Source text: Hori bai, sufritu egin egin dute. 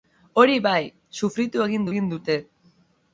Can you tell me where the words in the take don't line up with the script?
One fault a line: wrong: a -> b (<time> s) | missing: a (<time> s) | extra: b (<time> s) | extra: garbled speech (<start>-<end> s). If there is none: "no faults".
no faults